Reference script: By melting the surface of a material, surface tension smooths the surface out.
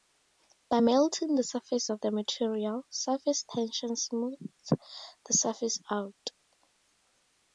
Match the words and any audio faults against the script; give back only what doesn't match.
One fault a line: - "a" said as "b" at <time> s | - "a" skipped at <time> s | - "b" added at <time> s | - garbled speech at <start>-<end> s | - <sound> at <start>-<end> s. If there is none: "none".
- "a" said as "the" at 2.0 s